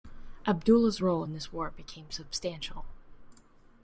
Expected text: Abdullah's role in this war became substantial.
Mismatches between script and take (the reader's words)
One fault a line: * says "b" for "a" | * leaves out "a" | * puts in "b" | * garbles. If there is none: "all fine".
all fine